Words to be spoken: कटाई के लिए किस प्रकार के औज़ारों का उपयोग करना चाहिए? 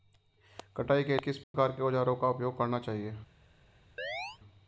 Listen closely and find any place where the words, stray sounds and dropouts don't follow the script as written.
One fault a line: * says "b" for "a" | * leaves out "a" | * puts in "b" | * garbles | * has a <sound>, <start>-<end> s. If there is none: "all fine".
* leaves out "लिए"
* has a dropout, 1.4-1.5 s
* has a chirp, 4.0-4.4 s